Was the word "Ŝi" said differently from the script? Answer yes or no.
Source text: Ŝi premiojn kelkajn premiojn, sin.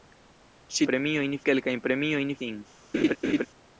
no